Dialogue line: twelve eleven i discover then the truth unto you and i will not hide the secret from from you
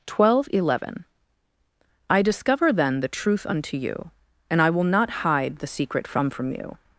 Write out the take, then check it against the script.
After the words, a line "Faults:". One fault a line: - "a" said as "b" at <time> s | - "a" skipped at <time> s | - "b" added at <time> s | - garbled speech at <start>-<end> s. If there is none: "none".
twelve eleven i discover then the truth unto you and i will not hide the secret from from you
Faults:
none